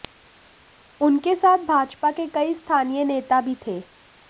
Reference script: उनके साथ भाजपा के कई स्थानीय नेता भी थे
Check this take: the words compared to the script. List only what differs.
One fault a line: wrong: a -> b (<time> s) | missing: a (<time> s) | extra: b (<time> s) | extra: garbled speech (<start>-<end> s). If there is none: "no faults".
no faults